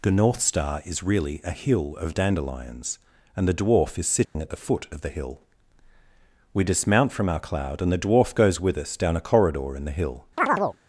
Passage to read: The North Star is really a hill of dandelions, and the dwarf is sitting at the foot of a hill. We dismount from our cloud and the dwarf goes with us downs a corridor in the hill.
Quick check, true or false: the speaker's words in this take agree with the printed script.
false